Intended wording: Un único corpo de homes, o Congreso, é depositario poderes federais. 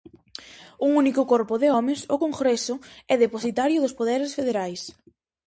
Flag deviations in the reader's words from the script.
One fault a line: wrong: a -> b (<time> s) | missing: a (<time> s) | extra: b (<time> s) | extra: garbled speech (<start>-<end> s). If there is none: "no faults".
extra: dos (3.8 s)